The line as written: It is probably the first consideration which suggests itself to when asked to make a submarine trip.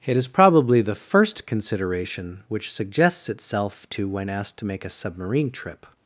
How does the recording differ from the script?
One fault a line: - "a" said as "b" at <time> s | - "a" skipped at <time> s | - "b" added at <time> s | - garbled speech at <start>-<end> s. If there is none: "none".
none